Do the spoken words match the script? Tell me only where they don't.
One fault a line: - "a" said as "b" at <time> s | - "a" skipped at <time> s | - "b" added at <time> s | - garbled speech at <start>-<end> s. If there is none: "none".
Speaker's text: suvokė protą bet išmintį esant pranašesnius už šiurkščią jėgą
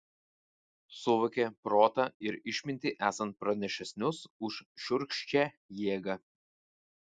- "bet" said as "ir" at 2.3 s